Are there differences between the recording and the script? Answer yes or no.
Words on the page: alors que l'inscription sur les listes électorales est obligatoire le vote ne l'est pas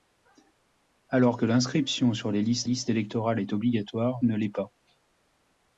yes